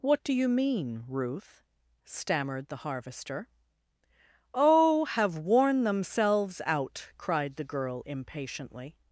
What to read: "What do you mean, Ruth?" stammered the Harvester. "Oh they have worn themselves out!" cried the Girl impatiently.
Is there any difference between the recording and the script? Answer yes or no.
yes